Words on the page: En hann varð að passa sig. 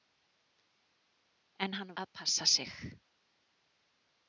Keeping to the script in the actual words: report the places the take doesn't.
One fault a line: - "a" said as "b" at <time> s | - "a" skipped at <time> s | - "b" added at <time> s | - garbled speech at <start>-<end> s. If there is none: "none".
- "varð" skipped at 1.9 s